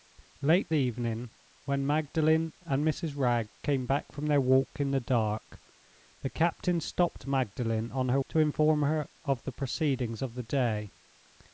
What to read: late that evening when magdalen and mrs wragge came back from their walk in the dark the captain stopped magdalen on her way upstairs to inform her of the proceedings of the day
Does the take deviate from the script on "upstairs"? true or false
true